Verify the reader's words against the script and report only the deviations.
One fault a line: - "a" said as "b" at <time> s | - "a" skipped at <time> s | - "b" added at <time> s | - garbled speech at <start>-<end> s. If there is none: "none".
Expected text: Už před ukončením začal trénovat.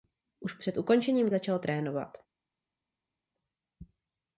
none